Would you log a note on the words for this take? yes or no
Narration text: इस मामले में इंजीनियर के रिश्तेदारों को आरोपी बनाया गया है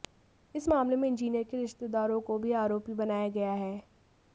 yes